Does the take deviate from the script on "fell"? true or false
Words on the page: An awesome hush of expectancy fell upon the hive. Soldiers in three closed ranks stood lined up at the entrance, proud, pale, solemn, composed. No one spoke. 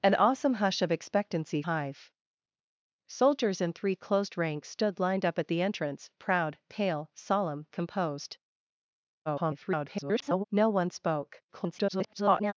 true